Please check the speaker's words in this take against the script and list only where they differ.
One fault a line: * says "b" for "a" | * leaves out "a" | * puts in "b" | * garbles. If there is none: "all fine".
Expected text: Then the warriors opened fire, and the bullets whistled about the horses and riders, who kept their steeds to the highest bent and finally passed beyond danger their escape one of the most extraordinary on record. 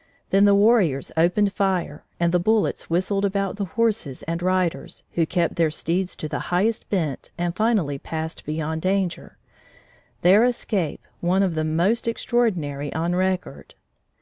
all fine